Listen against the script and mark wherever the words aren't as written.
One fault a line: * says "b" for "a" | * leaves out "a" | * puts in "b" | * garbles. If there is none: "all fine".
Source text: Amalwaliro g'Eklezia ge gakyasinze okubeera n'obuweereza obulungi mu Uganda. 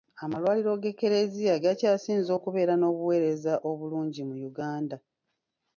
* leaves out "ge"